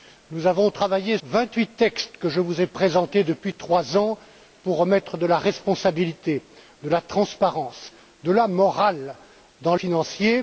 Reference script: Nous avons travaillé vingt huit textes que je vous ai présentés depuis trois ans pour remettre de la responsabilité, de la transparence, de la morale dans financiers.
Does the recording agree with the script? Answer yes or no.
yes